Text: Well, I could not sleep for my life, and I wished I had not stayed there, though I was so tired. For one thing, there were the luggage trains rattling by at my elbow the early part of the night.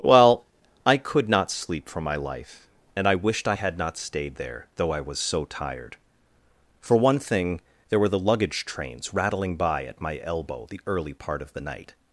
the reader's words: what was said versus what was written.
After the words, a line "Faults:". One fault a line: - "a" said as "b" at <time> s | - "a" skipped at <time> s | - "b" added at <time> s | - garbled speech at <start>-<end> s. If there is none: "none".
Well, I could not sleep for my life, and I wished I had not stayed there, though I was so tired. For one thing, there were the luggage trains rattling by at my elbow the early part of the night.
Faults:
none